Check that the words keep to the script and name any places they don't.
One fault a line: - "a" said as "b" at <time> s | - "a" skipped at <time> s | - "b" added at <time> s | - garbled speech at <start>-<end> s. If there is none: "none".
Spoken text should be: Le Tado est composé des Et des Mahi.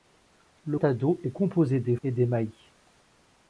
none